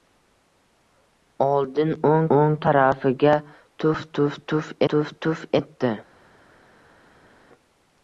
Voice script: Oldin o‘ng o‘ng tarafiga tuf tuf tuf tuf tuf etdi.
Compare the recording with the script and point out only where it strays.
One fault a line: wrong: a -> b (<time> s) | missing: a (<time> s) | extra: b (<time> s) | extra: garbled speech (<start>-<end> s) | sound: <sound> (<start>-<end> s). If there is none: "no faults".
no faults